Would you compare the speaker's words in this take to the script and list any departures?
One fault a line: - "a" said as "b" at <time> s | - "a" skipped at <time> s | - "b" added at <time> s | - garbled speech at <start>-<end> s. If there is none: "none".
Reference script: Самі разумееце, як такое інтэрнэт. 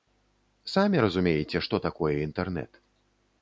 - "як" said as "што" at 1.7 s